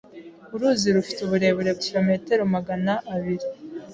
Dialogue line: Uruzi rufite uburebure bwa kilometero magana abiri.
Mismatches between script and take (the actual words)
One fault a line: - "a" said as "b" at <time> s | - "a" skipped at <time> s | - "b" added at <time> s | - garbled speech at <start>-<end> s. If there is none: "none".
- "bwa" skipped at 1.7 s